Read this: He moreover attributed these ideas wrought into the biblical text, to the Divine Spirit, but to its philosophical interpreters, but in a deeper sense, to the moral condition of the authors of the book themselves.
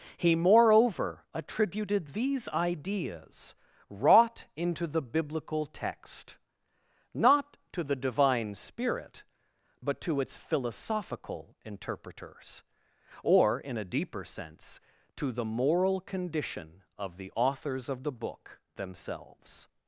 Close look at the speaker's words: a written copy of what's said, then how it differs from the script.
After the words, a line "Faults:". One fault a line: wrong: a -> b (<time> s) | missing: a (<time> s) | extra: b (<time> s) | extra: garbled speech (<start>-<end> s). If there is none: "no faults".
He moreover attributed these ideas wrought into the biblical text, not to the Divine Spirit, but to its philosophical interpreters, or in a deeper sense, to the moral condition of the authors of the book themselves.
Faults:
extra: not (7.1 s)
wrong: but -> or (13.2 s)